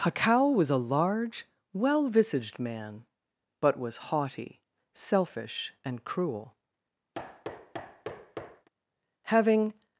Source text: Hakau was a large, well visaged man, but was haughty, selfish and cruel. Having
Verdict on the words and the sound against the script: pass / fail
fail